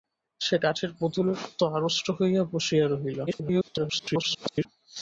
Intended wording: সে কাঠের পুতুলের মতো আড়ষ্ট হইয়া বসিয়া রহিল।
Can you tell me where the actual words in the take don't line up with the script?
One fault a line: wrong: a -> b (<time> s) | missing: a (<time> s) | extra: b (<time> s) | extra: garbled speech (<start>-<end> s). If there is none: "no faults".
extra: garbled speech (3.3-4.7 s)